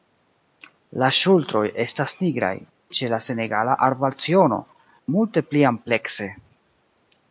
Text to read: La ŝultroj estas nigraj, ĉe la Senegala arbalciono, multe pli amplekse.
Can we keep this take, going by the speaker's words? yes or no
yes